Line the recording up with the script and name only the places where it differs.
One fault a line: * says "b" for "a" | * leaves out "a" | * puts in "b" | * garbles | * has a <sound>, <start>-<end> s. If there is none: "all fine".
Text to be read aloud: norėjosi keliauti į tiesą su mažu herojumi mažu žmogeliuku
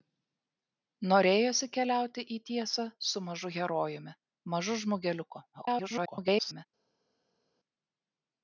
* garbles